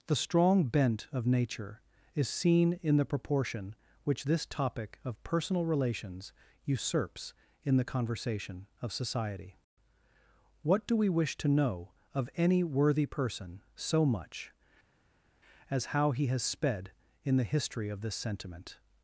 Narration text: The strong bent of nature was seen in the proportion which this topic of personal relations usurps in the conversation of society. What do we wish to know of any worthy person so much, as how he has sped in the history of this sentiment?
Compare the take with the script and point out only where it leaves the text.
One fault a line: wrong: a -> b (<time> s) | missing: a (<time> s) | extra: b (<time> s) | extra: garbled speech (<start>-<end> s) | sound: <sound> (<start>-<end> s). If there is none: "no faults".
wrong: was -> is (2.1 s)